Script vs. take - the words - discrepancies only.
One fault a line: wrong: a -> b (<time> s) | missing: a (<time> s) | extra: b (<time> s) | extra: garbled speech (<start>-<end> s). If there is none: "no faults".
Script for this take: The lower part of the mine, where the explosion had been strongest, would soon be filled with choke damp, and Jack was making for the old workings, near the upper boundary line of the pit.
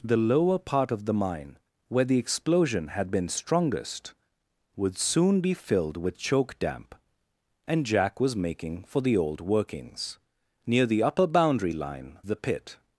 missing: of (12.2 s)